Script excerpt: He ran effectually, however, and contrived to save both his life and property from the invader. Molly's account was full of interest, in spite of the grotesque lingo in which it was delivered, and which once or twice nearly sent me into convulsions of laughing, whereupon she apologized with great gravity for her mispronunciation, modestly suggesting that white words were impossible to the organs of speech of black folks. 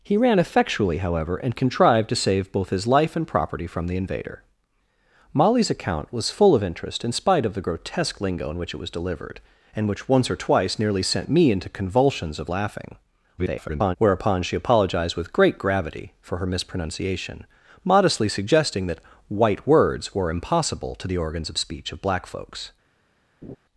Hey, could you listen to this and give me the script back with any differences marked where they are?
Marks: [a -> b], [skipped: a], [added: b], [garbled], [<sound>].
He ran effectually, however, and contrived to save both his life and property from the invader. Molly's account was full of interest, in spite of the grotesque lingo in which it was delivered, and which once or twice nearly sent me into convulsions of laughing, [garbled] whereupon she apologized with great gravity for her mispronunciation, modestly suggesting that white words were impossible to the organs of speech of black folks. [laugh]